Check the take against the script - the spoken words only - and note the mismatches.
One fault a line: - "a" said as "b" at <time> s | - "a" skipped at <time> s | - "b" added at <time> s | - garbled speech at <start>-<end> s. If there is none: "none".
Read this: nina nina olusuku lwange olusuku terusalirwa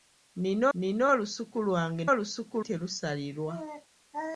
none